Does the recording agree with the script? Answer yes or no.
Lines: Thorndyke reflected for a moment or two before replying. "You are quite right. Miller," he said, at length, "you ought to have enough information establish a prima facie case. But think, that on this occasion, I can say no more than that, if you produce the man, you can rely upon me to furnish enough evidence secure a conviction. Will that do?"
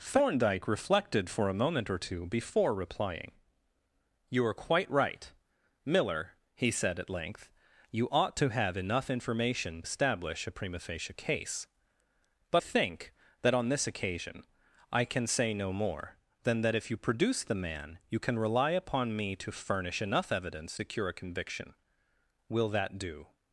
yes